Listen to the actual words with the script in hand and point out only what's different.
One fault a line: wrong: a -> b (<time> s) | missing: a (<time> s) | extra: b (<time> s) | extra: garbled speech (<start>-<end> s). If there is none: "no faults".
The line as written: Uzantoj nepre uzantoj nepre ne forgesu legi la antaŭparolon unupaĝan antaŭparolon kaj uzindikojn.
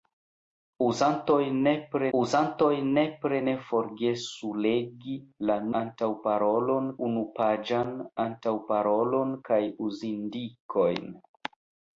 no faults